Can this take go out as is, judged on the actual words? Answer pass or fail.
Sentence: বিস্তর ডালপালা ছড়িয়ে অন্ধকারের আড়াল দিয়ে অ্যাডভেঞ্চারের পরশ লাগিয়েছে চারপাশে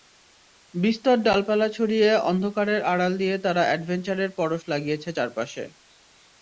fail